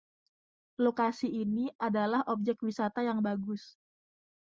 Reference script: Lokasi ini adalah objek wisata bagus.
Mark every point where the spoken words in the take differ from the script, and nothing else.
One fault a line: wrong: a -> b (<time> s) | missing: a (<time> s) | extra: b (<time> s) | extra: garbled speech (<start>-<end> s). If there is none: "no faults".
extra: yang (3.0 s)